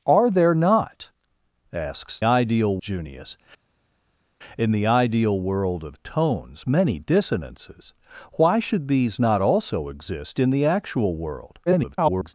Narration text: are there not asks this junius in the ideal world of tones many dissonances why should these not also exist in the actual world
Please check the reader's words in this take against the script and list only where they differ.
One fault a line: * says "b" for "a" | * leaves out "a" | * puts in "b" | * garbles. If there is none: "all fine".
* says "ideal" for "this"
* garbles